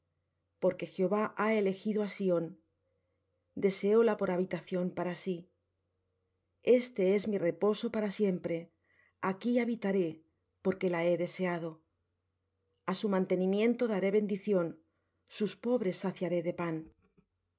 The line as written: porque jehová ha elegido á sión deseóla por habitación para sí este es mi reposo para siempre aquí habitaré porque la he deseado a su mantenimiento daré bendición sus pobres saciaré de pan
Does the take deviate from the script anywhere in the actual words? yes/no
no